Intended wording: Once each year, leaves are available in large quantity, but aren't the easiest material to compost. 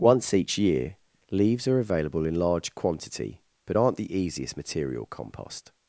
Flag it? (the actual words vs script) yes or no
yes